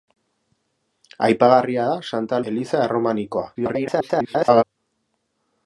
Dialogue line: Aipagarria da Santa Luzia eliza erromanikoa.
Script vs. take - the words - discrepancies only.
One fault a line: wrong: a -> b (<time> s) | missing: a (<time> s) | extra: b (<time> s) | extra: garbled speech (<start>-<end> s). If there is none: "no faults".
missing: Luzia (2.4 s)
extra: garbled speech (3.6-4.6 s)